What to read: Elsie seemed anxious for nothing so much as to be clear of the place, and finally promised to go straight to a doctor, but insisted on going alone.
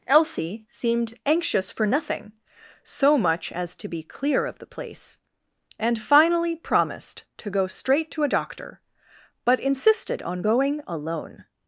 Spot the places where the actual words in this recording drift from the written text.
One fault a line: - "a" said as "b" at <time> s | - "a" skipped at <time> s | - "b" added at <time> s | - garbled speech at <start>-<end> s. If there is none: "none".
none